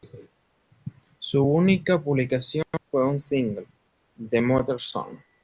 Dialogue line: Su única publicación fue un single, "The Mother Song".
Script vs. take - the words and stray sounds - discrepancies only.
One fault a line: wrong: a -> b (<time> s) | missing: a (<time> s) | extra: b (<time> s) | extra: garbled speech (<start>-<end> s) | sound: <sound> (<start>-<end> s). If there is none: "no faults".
no faults